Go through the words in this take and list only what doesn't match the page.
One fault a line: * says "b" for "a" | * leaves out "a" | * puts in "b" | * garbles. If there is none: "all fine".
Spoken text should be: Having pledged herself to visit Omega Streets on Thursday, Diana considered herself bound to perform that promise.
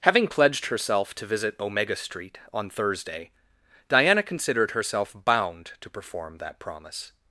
* says "Street" for "Streets"